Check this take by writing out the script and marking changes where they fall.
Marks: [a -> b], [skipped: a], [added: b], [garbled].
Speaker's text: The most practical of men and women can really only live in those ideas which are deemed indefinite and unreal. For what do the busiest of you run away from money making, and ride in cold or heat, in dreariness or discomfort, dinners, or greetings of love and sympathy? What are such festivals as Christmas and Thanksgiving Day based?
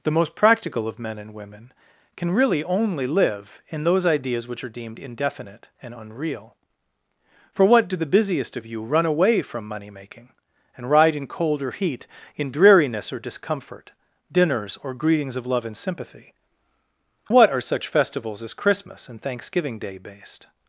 The most practical of men and women can really only live in those ideas which are deemed indefinite and unreal. For what do the busiest of you run away from money making, and ride in cold or heat, in dreariness or discomfort, dinners, or greetings of love and sympathy? What are such festivals as Christmas and Thanksgiving Day based?